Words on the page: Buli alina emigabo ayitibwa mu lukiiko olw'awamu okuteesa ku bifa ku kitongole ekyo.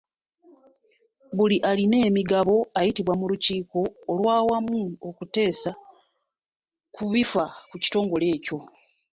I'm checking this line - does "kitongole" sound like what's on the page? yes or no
yes